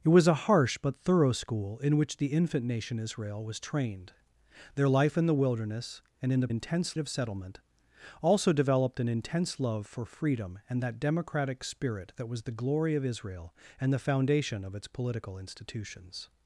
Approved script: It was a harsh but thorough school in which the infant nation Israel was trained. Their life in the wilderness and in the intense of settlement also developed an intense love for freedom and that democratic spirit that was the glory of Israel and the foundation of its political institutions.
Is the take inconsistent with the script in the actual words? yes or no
no